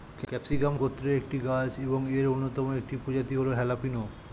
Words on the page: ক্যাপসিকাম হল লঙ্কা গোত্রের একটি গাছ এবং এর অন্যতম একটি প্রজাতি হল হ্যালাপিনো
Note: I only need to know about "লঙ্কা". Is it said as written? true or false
false